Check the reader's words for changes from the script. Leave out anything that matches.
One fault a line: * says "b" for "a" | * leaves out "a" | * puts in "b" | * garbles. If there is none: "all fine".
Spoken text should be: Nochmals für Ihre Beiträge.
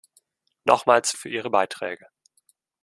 all fine